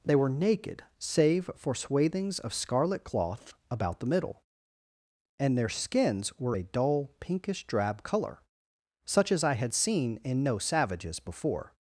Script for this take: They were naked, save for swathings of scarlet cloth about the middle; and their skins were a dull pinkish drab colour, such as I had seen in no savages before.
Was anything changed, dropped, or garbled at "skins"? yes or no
no